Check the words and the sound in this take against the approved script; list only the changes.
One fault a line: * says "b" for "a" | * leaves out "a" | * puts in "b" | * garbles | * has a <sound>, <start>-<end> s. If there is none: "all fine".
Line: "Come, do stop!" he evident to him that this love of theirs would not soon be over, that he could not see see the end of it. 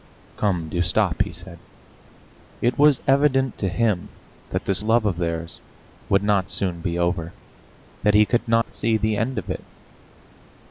* puts in "said It was"
* has a dropout, 8.6-8.7 s
* leaves out "see"